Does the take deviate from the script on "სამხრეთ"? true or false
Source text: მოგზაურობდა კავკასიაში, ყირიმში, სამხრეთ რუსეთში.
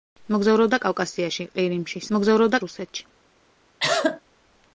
true